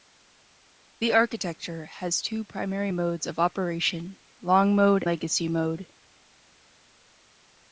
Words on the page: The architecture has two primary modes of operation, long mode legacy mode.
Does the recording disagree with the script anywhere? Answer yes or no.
no